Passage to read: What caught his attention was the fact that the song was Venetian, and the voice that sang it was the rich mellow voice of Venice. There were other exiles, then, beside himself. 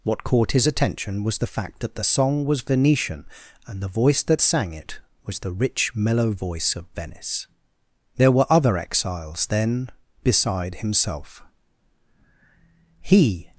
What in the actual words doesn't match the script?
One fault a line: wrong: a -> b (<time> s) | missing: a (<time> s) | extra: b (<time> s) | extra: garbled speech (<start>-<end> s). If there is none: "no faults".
extra: He (13.0 s)